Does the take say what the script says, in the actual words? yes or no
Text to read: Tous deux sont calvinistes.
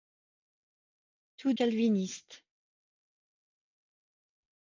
no